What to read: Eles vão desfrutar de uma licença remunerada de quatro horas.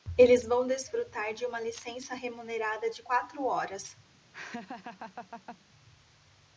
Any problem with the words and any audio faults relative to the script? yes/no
yes